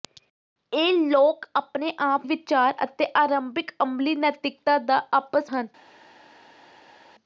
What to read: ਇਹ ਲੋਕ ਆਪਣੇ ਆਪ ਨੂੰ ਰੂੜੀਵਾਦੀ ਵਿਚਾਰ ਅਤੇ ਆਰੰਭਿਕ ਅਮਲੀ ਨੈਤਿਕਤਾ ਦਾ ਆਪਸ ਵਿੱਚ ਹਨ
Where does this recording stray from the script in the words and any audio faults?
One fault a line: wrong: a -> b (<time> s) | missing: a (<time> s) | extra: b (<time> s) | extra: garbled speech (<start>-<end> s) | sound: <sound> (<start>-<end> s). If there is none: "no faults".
missing: ਨੂੰ ਰੂੜੀਵਾਦੀ (2.3 s)
missing: ਵਿੱਚ (5.5 s)